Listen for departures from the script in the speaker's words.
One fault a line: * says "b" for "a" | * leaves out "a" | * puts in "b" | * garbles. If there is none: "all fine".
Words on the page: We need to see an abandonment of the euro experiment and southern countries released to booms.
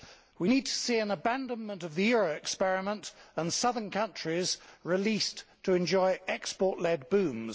* puts in "enjoy export led"